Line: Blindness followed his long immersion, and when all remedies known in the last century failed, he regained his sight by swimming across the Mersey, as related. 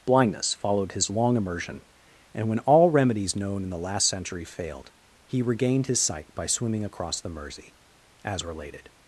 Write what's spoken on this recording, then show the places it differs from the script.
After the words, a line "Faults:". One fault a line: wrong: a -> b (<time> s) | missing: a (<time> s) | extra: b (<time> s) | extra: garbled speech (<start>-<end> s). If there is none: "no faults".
Blindness followed his long immersion, and when all remedies known in the last century failed, he regained his sight by swimming across the Mersey, as related.
Faults:
no faults